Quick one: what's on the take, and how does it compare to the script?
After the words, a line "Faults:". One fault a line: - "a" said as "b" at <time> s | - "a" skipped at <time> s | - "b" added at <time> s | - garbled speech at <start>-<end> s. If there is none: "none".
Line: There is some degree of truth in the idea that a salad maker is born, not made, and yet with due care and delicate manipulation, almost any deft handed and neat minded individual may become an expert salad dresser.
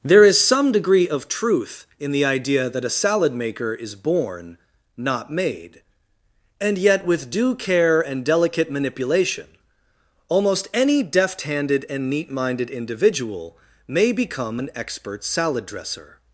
There is some degree of truth in the idea that a salad maker is born, not made, and yet with due care and delicate manipulation, almost any deft handed and neat minded individual may become an expert salad dresser.
Faults:
none